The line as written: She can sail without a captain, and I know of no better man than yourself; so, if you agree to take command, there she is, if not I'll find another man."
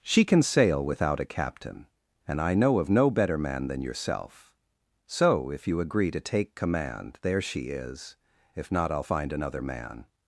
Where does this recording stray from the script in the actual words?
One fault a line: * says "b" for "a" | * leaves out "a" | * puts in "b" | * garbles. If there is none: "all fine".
all fine